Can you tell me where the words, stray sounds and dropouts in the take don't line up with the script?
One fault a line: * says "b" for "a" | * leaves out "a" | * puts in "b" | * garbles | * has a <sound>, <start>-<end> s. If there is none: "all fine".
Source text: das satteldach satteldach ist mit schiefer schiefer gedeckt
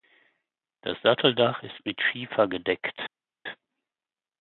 * leaves out "satteldach"
* leaves out "schiefer"